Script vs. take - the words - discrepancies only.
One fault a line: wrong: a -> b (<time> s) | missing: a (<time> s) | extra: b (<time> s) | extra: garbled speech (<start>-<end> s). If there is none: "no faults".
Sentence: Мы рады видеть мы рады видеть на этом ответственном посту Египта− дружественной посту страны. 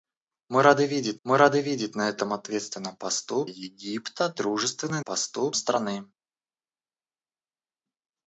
no faults